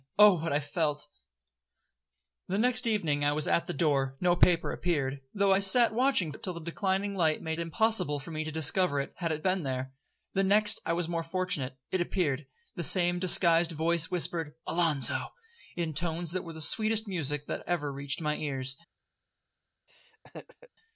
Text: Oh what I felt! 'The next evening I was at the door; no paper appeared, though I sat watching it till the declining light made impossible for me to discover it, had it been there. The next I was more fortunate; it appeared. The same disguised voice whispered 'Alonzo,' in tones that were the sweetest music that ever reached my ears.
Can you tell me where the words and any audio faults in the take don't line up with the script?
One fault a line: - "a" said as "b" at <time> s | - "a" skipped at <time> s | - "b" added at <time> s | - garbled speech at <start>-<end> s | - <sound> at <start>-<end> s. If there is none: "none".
- laugh at 19.9-20.7 s